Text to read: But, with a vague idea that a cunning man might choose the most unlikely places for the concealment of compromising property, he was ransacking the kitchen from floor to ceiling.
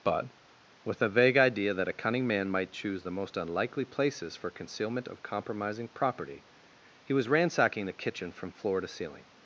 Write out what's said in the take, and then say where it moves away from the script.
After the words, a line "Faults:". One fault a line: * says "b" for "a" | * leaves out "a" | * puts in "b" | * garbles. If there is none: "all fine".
But, with a vague idea that a cunning man might choose the most unlikely places for concealment of compromising property, he was ransacking the kitchen from floor to ceiling.
Faults:
* leaves out "the"